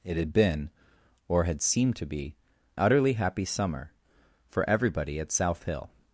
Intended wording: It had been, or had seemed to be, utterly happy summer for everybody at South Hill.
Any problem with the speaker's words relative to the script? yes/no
no